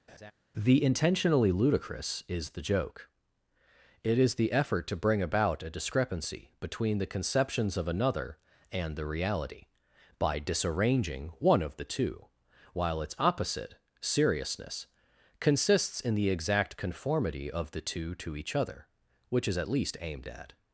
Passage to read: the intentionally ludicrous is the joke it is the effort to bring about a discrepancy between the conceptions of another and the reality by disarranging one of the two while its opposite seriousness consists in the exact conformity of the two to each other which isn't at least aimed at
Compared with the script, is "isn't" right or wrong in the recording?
wrong